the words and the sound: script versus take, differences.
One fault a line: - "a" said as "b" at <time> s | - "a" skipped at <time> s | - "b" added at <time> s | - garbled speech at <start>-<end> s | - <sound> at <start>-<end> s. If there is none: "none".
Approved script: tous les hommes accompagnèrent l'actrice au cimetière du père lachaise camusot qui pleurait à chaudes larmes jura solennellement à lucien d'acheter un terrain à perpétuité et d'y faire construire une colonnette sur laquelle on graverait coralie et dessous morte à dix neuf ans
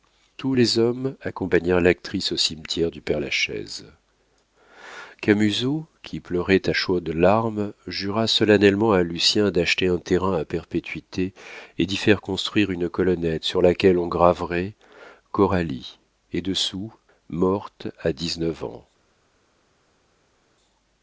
none